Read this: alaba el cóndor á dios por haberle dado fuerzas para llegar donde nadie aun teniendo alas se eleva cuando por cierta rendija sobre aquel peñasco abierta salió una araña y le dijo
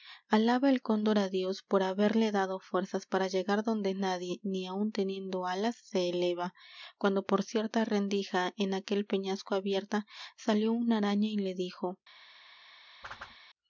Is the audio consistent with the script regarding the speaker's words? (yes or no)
no